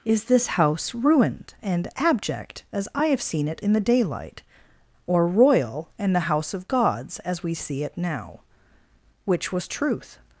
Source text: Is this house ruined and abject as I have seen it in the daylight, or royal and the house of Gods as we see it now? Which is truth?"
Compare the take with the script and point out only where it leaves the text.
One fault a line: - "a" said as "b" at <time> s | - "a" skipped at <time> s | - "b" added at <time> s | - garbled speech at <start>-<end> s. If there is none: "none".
- "is" said as "was" at 9.5 s